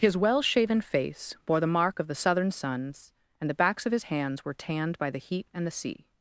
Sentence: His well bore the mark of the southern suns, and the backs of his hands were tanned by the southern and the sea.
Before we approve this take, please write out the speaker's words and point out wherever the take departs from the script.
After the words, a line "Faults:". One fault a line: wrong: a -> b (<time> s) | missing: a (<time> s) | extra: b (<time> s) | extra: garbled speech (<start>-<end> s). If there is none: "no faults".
His well shaven face bore the mark of the southern suns, and the backs of his hands were tanned by the heat and the sea.
Faults:
extra: shaven face (0.4 s)
wrong: southern -> heat (5.2 s)